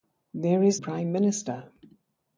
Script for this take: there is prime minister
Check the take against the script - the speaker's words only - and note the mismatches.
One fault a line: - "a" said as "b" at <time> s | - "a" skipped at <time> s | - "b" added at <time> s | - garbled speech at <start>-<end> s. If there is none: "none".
none